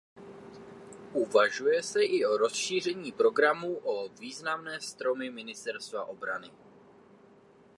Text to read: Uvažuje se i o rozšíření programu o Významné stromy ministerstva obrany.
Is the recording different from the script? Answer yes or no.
no